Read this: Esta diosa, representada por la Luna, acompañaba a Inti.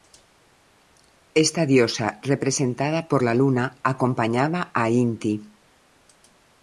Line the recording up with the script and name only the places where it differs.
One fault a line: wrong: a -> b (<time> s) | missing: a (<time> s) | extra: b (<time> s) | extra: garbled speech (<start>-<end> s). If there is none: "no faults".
no faults